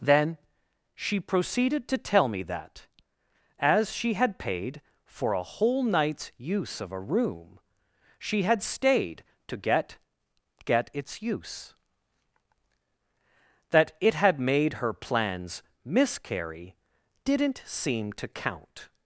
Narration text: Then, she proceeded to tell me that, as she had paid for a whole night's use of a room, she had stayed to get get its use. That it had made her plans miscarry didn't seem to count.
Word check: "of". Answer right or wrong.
right